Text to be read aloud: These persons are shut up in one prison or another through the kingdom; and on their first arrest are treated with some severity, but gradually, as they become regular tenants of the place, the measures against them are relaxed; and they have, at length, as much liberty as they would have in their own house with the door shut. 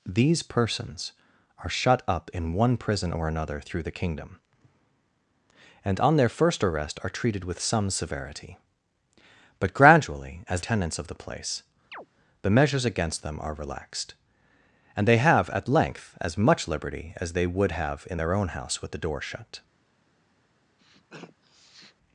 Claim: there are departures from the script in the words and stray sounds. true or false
true